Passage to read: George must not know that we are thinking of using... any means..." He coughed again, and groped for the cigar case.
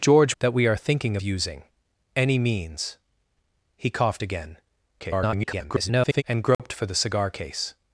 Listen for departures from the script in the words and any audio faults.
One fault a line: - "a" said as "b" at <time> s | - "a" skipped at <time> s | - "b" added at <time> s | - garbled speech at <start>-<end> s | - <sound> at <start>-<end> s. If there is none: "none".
- "must not know" skipped at 0.4 s
- "of" skipped at 1.2 s
- garbled speech at 5.0-6.2 s
- dropout at 6.5-6.6 s